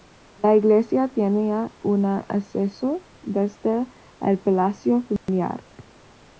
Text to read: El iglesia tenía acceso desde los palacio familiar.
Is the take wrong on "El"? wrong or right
wrong